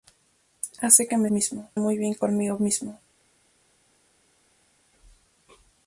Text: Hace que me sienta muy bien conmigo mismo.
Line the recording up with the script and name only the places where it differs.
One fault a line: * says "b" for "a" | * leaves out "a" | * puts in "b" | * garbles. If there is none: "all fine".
* says "mismo" for "sienta"